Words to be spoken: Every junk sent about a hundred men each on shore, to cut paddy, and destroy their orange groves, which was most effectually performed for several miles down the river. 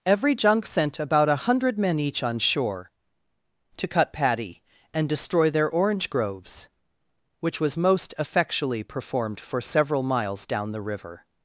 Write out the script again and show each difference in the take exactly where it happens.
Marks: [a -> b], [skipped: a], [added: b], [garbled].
Every junk sent about a hundred men each on shore, to cut paddy, and destroy their orange groves, which was most effectually performed for several miles down the river.